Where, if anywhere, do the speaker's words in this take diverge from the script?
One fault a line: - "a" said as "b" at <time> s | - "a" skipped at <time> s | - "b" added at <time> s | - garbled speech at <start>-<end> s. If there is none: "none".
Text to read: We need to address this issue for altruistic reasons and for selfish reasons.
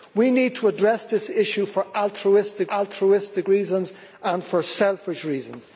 - "altruistic" added at 2.7 s